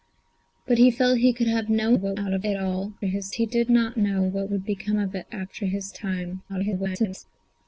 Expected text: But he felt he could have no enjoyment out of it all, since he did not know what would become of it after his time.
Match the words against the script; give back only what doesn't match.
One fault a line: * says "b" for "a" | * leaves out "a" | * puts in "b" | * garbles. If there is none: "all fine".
* says "what" for "enjoyment"
* says "his" for "since"
* garbles